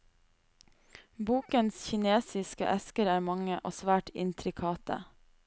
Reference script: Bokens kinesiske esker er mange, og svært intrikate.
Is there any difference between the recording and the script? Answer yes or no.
no